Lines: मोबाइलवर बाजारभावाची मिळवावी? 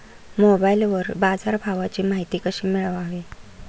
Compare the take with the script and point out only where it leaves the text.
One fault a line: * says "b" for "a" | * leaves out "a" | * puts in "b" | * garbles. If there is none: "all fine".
* puts in "माहिती कशी"